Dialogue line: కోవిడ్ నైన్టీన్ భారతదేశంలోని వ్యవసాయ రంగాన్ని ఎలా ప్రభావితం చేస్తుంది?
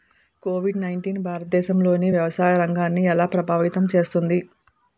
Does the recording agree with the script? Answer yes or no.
yes